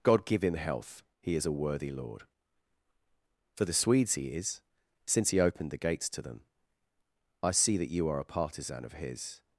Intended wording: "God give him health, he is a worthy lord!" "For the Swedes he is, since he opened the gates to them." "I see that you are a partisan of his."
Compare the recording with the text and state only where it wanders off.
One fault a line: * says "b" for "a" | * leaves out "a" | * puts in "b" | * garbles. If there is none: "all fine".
all fine